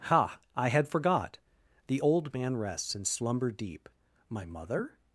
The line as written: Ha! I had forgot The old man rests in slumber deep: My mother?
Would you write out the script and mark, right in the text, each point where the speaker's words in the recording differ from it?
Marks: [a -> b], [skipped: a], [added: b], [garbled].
Ha! I had forgot The old man rests in slumber deep: My mother?